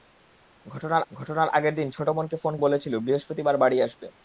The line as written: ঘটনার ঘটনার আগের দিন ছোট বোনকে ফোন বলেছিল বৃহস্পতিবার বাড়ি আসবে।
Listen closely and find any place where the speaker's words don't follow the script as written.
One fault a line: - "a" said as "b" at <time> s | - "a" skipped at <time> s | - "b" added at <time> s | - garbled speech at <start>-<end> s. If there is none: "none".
none